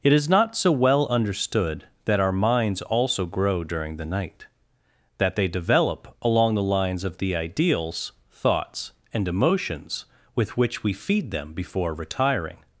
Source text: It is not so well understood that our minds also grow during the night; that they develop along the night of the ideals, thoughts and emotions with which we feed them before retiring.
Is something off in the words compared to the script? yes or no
yes